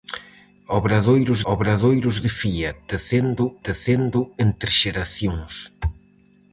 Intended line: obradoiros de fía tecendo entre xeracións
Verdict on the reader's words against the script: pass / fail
fail